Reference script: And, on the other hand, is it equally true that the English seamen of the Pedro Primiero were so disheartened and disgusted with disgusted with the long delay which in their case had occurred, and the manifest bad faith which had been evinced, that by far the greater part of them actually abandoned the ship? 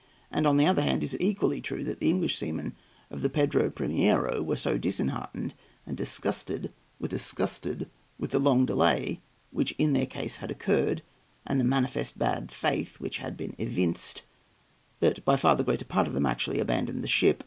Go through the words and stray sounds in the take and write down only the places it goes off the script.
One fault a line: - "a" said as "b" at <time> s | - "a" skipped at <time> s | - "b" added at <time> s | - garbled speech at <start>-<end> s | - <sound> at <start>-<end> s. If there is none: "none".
none